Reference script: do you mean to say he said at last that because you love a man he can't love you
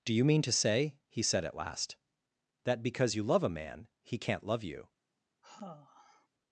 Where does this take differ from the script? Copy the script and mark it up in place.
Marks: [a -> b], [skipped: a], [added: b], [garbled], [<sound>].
do you mean to say he said at last that because you love a man he can't love you [sigh]